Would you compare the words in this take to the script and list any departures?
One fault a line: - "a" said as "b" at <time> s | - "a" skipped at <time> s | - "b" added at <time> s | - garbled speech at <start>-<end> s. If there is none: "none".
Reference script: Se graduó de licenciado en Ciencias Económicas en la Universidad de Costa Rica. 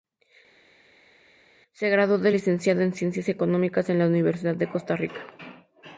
none